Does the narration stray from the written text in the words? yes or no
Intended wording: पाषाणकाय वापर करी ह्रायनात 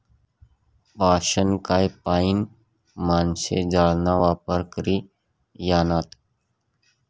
yes